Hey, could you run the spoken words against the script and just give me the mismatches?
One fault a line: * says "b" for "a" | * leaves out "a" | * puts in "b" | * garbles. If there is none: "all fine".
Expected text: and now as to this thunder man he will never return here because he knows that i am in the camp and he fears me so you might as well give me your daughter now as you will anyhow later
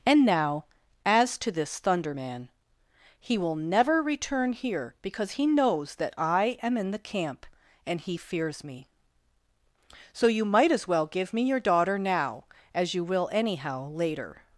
all fine